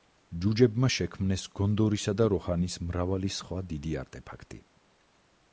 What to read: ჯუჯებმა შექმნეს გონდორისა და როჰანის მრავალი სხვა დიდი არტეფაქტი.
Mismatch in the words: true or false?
false